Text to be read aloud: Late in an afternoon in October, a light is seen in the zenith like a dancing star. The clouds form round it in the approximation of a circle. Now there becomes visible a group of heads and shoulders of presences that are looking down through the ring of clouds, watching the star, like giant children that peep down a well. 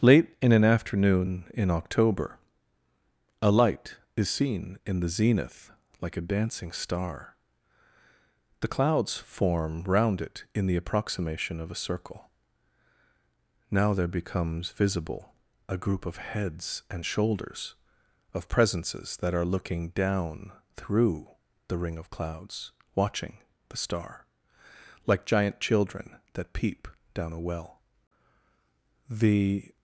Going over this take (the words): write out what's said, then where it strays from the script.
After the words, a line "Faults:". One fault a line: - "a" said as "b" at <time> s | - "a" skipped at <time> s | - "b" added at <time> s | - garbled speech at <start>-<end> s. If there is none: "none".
Late in an afternoon in October, a light is seen in the zenith like a dancing star. The clouds form round it in the approximation of a circle. Now there becomes visible a group of heads and shoulders of presences that are looking down through the ring of clouds, watching the star, like giant children that peep down a well. The
Faults:
- "The" added at 29.1 s